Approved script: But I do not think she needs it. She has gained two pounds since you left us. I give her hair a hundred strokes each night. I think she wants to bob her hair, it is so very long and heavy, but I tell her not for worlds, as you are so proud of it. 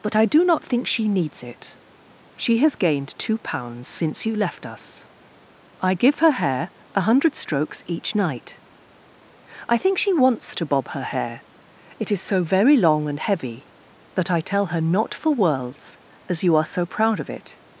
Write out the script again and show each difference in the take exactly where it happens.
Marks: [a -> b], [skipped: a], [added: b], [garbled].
But I do not think she needs it. She has gained two pounds since you left us. I give her hair a hundred strokes each night. I think she wants to bob her hair, it is so very long and heavy, [but -> that] I tell her not for worlds, as you are so proud of it.